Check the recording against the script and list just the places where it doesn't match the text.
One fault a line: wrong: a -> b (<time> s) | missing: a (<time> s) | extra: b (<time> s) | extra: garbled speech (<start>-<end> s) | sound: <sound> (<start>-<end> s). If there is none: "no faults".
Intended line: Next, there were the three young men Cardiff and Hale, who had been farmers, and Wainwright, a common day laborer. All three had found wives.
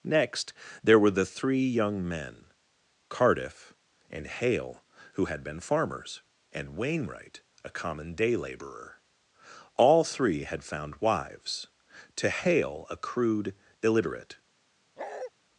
extra: To Hale a crude illiterate (12.2 s)
sound: bark (15.0-15.3 s)